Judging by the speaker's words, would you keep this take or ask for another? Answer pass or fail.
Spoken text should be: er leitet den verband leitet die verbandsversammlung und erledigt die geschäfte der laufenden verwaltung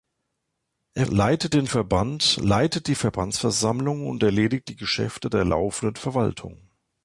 pass